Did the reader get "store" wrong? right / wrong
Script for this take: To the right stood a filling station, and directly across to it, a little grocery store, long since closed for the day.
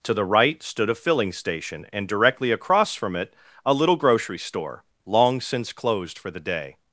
right